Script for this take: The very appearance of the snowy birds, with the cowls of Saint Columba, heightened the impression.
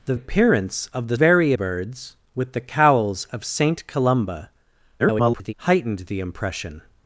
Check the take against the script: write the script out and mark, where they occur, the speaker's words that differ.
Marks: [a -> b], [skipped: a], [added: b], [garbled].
The [skipped: very] appearance of the [snowy -> very] birds, with the cowls of Saint Columba, [garbled] heightened the impression.